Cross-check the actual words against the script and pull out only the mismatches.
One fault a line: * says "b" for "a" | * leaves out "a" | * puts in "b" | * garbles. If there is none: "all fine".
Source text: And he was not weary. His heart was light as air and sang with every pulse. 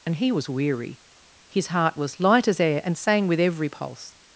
* leaves out "not"